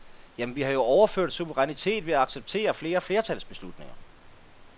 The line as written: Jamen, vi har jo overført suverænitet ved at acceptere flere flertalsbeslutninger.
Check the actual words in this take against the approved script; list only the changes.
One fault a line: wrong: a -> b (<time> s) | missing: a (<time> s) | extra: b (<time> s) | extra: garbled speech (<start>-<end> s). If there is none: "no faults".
no faults